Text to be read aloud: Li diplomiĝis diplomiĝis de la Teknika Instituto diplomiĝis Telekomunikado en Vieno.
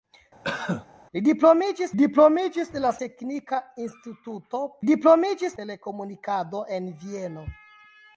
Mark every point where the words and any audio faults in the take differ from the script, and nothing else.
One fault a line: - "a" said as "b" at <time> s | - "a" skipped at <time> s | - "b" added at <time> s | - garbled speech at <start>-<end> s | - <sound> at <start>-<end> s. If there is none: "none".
- cough at 0.4-0.9 s